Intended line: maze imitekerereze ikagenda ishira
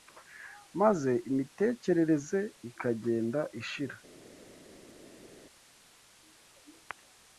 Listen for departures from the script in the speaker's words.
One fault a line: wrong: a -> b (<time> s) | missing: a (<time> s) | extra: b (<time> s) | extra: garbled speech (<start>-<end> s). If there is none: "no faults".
no faults